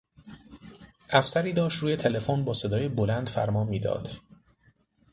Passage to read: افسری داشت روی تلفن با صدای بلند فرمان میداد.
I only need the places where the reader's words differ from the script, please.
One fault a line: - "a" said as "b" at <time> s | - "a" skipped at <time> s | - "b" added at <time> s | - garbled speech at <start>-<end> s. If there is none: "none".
none